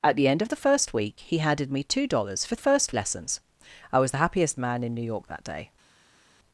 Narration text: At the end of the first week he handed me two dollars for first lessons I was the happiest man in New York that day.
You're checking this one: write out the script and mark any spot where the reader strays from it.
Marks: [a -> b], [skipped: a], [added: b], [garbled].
At the end of the first week he handed me two dollars for first lessons I was the happiest man in New York that day.